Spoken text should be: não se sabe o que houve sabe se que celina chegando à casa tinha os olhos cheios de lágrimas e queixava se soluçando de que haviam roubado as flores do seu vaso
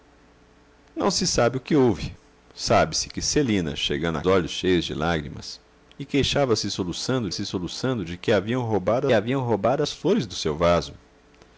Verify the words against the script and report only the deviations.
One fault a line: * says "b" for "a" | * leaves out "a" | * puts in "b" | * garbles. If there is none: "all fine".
* leaves out "casa tinha os"
* puts in "se soluçando"
* puts in "haviam roubado"